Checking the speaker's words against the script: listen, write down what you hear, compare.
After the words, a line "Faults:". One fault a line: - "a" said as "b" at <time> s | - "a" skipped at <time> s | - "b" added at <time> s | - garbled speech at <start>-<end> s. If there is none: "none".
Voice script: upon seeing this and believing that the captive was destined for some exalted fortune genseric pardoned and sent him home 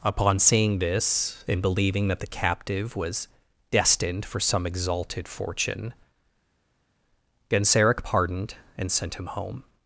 upon seeing this and believing that the captive was destined for some exalted fortune genseric pardoned and sent him home
Faults:
none